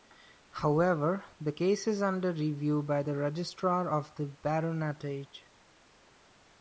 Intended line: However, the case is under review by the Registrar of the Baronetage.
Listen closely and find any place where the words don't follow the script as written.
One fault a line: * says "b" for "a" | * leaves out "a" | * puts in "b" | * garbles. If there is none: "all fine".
all fine